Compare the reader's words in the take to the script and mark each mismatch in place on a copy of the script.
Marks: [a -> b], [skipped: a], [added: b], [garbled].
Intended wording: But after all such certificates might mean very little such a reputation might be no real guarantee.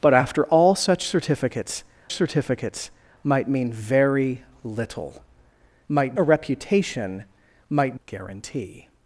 But after all such certificates [added: certificates] might mean very little [such -> might] a reputation might [skipped: be no real] guarantee.